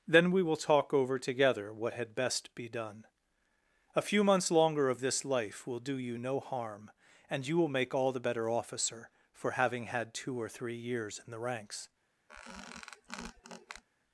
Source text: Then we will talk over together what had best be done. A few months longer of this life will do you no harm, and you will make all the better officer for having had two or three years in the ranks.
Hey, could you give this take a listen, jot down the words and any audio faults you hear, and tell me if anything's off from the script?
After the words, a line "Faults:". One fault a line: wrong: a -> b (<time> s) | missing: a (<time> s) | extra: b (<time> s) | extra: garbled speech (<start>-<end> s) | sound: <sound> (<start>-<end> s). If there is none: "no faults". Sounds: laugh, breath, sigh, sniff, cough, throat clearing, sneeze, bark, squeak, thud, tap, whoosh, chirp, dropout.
Then we will talk over together what had best be done. A few months longer of this life will do you no harm, and you will make all the better officer for having had two or three years in the ranks.
Faults:
sound: squeak (12.3-13.8 s)